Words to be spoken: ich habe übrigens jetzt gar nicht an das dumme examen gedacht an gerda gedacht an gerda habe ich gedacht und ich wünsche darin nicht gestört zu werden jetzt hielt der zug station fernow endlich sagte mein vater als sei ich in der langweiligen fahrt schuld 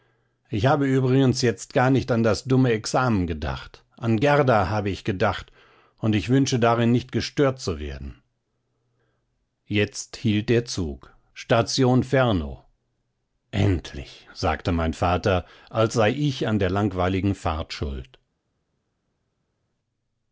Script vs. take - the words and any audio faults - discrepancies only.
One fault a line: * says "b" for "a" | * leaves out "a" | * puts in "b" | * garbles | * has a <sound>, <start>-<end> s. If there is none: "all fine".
* leaves out "gedacht an gerda"
* says "an" for "in"